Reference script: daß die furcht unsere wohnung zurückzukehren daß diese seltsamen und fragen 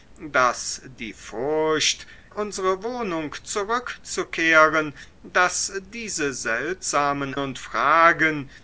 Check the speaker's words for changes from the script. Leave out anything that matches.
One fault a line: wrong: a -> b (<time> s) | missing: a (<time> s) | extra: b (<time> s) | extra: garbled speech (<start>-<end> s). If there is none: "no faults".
no faults